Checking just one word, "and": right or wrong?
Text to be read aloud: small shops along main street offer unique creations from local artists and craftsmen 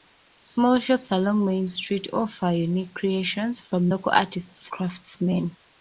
wrong